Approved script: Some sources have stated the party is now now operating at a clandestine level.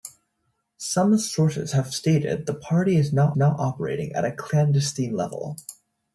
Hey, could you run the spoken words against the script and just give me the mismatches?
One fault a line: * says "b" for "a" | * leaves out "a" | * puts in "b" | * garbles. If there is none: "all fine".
all fine